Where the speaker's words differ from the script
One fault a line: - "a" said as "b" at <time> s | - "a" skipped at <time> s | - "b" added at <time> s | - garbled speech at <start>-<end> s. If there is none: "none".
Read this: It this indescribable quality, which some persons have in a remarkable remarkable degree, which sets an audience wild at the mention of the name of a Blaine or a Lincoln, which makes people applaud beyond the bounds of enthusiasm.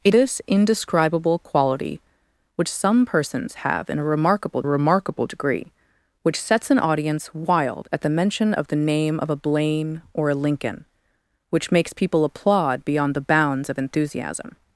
none